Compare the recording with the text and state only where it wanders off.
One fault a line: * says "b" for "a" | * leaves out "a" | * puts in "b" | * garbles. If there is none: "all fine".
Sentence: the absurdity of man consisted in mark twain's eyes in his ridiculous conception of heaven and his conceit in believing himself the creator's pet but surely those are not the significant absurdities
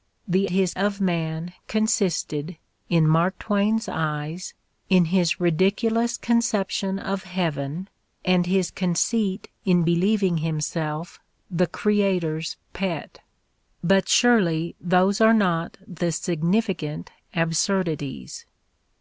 * says "his" for "absurdity"